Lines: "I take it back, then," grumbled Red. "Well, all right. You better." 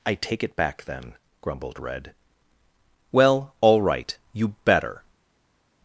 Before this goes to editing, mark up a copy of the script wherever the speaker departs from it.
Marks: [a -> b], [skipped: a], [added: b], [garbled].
"I take it back, then," grumbled Red. "Well, all right. You better."